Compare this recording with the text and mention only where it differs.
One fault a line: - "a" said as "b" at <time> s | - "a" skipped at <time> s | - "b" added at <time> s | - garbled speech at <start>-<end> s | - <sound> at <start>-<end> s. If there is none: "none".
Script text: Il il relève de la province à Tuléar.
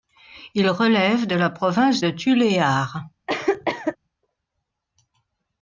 - "il" skipped at 0.7 s
- "à" said as "de" at 2.0 s
- cough at 3.3-4.0 s